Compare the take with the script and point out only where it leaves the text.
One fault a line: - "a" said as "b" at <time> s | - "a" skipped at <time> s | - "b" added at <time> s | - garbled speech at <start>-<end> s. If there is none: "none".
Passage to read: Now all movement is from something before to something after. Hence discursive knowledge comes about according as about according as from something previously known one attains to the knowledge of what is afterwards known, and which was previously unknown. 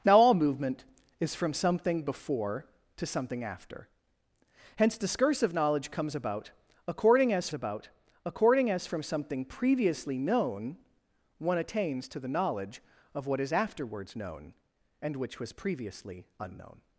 none